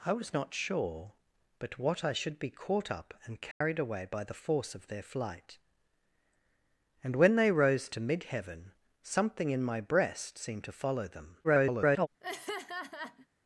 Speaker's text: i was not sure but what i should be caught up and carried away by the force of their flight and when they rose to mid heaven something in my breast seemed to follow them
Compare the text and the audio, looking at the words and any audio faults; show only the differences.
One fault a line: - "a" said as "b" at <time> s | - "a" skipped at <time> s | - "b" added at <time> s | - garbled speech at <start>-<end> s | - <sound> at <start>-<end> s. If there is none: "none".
- dropout at 3.5-3.6 s
- garbled speech at 11.4-12.1 s
- laugh at 12.2-13.3 s